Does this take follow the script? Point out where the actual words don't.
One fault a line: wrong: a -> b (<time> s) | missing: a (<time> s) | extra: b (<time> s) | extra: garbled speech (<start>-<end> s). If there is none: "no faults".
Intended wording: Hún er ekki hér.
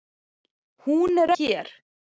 missing: ekki (1.3 s)